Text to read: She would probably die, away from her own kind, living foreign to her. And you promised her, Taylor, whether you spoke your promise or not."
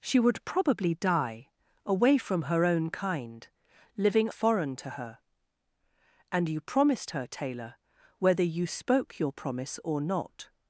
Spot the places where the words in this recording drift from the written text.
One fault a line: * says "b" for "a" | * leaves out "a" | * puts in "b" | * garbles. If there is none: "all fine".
all fine